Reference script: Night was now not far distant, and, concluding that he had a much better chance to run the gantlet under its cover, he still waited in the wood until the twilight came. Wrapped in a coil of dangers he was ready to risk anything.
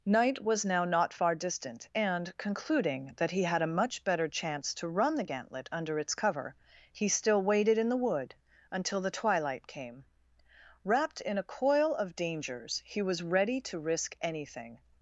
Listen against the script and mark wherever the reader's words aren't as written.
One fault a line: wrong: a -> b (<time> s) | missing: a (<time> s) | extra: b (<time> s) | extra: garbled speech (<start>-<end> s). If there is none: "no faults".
no faults